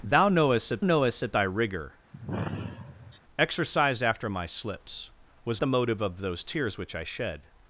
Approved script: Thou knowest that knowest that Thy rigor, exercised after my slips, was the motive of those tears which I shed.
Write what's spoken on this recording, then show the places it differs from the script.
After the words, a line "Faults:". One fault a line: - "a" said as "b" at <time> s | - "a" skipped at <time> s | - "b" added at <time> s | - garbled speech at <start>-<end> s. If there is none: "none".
Thou knowest that knowest that Thy rigor, exercised after my slips, was the motive of those tears which I shed.
Faults:
none